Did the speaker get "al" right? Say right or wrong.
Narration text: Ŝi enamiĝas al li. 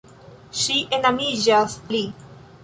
wrong